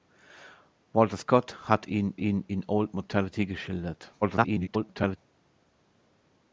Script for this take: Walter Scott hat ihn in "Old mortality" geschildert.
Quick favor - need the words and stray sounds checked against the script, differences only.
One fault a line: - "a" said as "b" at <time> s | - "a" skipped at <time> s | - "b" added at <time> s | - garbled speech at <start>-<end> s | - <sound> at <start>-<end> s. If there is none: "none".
- "ihn" added at 2.2 s
- garbled speech at 4.2-5.2 s